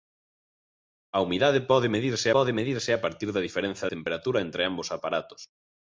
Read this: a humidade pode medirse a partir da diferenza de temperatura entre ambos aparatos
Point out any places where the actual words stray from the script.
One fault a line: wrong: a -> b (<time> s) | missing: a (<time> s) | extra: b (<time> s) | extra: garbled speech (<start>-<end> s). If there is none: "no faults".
extra: pode medirse (2.4 s)
missing: de (3.8 s)